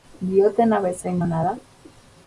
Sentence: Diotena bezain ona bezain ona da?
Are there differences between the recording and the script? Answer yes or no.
yes